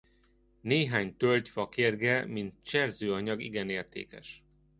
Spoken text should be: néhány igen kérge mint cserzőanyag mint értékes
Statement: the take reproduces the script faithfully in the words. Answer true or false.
false